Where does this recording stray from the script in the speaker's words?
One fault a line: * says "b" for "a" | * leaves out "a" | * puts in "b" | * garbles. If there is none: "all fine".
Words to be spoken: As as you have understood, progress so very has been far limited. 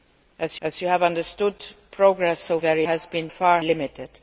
all fine